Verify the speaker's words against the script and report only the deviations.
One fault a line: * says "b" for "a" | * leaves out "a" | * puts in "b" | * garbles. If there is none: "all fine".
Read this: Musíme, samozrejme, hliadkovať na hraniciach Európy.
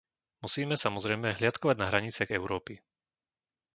all fine